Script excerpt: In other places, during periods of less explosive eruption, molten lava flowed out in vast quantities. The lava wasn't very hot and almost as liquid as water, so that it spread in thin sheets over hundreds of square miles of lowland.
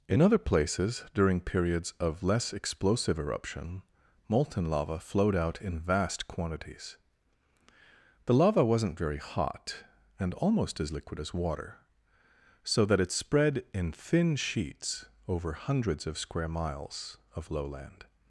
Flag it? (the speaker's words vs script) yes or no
no